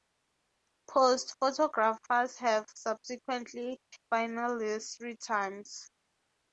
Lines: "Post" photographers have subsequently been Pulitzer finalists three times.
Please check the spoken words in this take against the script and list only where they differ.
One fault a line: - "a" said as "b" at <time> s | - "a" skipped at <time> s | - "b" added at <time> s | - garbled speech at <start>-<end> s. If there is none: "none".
- "been Pulitzer" skipped at 3.8 s